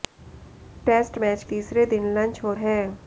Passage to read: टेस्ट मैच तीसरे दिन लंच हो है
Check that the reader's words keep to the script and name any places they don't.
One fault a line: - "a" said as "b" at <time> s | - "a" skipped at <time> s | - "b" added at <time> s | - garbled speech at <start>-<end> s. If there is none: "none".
none